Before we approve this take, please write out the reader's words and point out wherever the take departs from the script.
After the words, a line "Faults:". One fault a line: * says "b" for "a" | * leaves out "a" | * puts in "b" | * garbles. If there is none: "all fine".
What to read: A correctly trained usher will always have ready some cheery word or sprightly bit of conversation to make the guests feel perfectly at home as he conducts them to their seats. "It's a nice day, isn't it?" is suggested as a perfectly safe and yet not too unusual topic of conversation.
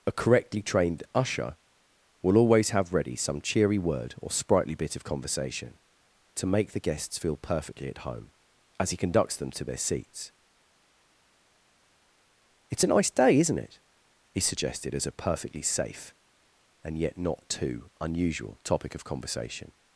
A correctly trained usher will always have ready some cheery word or sprightly bit of conversation to make the guests feel perfectly at home as he conducts them to their seats. "It's a nice day, isn't it?" he suggested as a perfectly safe and yet not too unusual topic of conversation.
Faults:
* says "he" for "is"